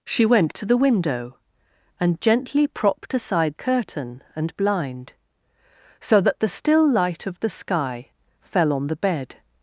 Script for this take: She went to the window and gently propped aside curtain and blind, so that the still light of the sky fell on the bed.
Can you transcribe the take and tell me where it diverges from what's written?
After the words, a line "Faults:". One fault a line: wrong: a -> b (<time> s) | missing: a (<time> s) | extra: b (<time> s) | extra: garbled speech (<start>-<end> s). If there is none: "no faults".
She went to the window and gently propped aside curtain and blind, so that the still light of the sky fell on the bed.
Faults:
no faults